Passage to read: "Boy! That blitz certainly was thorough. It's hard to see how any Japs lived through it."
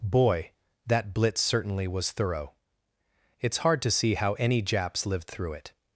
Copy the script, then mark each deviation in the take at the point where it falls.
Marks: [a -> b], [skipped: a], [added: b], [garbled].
"Boy! That blitz certainly was thorough. It's hard to see how any Japs lived through it."